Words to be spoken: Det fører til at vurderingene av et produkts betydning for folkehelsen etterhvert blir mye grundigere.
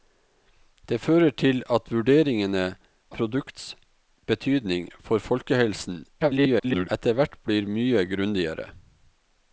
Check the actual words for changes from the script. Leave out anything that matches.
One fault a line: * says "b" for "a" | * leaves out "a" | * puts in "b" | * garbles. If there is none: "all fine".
* leaves out "av et"
* garbles